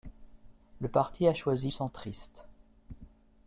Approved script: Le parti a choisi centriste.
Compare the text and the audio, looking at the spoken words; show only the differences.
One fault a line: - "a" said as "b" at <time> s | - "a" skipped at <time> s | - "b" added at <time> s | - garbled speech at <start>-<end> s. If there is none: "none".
none